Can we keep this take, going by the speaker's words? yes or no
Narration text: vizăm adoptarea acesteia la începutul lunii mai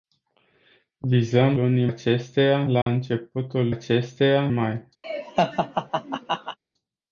no